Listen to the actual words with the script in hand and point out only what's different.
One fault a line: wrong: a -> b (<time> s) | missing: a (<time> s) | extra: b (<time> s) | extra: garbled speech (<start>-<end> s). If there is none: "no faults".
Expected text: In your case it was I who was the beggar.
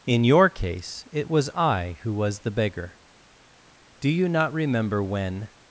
extra: Do you not remember when (4.0 s)